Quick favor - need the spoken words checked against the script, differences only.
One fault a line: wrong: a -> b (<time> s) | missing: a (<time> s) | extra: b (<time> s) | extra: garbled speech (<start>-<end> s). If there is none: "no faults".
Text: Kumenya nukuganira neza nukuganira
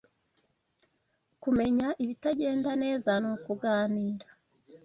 wrong: nukuganira -> ibitagenda (2.0 s)